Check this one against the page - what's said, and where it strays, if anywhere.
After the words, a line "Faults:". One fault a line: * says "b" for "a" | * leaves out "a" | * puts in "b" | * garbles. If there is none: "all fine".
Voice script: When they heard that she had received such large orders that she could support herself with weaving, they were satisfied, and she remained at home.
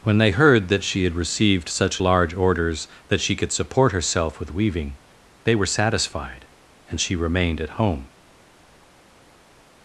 When they heard that she had received such large orders that she could support herself with weaving, they were satisfied, and she remained at home.
Faults:
all fine